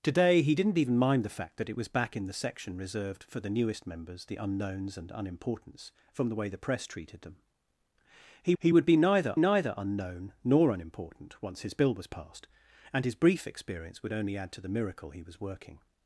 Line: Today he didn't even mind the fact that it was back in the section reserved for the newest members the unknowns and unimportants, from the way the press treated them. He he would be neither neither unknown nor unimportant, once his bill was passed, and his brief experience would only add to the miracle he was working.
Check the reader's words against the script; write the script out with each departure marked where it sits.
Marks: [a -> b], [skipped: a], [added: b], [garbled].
Today he didn't even mind the fact that it was back in the section reserved for the newest members the unknowns and unimportants, from the way the press treated them. He he would be neither neither unknown nor unimportant, once his bill was passed, and his brief experience would only add to the miracle he was working.